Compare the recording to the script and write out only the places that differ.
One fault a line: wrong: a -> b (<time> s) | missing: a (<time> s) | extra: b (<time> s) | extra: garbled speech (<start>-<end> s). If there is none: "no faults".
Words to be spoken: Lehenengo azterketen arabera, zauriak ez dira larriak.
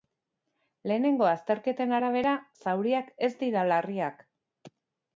no faults